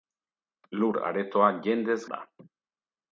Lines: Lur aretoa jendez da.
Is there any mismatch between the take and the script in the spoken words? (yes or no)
no